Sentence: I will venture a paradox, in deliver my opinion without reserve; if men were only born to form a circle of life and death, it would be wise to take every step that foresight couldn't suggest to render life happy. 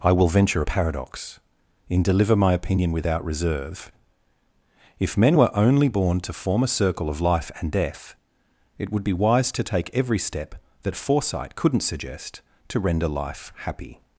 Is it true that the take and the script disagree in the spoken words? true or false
false